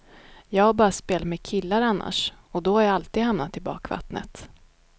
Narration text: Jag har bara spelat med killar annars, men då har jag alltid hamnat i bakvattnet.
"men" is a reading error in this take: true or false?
true